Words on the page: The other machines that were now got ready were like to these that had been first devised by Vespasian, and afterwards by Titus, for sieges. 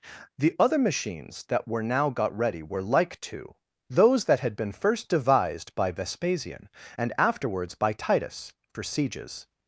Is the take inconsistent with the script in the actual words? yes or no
yes